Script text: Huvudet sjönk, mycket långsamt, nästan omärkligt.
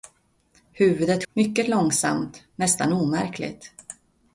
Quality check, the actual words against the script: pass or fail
fail